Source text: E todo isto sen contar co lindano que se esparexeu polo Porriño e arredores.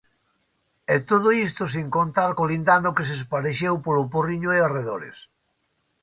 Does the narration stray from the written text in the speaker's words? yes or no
no